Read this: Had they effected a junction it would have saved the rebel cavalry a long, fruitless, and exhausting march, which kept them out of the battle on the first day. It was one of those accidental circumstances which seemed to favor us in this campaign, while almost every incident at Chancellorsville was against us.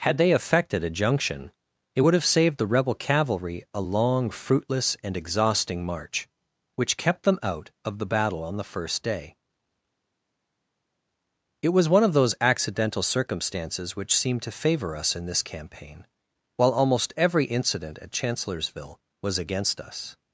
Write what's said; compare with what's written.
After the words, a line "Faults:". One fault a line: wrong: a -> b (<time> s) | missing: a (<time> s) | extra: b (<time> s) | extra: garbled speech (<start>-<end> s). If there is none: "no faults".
Had they effected a junction it would have saved the rebel cavalry a long, fruitless, and exhausting march, which kept them out of the battle on the first day. It was one of those accidental circumstances which seemed to favor us in this campaign, while almost every incident at Chancellorsville was against us.
Faults:
no faults